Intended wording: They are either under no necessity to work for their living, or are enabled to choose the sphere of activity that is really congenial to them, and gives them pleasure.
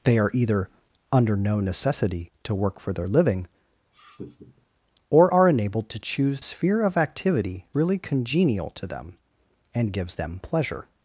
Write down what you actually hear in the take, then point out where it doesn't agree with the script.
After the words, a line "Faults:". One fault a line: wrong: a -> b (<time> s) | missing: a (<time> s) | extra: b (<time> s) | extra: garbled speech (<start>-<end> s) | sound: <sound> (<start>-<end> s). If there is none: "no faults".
They are either under no necessity to work for their living, or are enabled to choose sphere of activity really congenial to them, and gives them pleasure.
Faults:
sound: laugh (3.9-4.7 s)
missing: the (6.4 s)
missing: that is (7.7 s)